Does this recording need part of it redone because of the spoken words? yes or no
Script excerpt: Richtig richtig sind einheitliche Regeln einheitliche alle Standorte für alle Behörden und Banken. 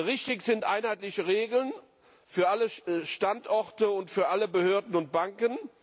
yes